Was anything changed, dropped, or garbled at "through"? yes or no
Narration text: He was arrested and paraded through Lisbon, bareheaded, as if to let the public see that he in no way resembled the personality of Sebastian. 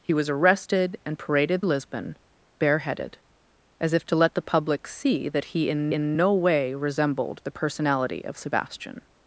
yes